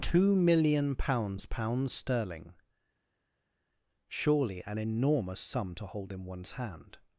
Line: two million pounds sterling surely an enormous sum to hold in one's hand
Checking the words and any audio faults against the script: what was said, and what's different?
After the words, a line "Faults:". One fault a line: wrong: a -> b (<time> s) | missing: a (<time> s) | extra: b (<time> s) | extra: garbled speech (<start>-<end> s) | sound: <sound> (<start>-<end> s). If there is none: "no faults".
two million pounds pounds sterling surely an enormous sum to hold in one's hand
Faults:
extra: pounds (1.4 s)